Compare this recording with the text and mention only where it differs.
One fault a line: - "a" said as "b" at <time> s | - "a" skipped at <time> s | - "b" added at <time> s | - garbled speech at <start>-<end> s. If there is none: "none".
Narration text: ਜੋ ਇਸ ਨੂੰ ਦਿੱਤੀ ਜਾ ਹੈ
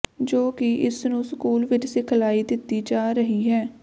- "ਕਿ" added at 0.5 s
- "ਸਕੂਲ ਵਿਚ ਸਿਖਲਾਈ" added at 1.2 s
- "ਰਹੀ" added at 3.1 s